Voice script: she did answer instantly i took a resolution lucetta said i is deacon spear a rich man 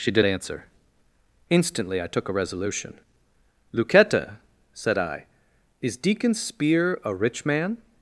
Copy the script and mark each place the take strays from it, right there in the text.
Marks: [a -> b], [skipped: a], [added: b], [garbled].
she did answer instantly i took a resolution lucetta said i is deacon spear a rich man